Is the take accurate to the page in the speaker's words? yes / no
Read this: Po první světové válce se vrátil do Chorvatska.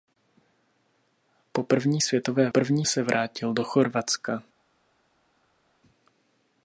no